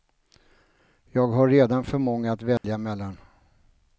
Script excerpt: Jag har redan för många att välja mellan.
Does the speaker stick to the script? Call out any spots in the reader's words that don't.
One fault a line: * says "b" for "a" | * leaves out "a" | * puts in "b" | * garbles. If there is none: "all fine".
all fine